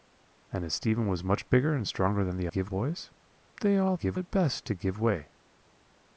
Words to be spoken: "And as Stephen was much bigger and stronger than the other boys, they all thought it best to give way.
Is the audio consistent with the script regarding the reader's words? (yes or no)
no